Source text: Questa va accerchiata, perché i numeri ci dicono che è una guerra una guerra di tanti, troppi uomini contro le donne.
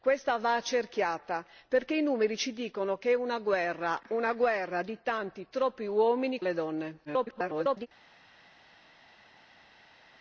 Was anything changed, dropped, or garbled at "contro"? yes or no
yes